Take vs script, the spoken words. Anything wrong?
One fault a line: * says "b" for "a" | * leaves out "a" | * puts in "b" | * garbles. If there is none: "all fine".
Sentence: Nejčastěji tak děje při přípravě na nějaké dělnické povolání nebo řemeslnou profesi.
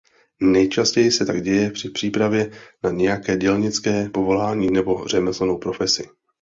* puts in "se"